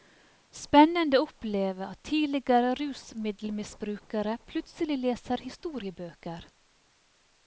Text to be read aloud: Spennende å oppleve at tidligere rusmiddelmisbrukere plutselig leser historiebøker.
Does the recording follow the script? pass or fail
pass